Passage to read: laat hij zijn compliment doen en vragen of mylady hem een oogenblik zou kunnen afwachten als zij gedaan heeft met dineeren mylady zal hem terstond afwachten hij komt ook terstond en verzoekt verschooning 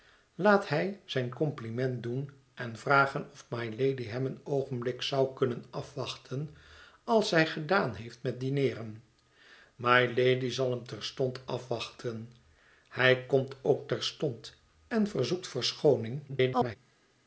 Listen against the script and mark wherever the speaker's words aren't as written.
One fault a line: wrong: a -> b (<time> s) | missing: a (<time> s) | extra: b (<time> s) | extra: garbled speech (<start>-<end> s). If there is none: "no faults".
extra: garbled speech (16.3-16.8 s)